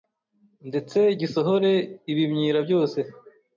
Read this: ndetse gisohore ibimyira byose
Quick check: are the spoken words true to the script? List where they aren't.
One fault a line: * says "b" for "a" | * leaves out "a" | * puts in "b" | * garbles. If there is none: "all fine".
all fine